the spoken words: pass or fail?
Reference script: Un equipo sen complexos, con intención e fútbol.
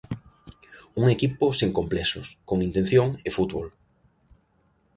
pass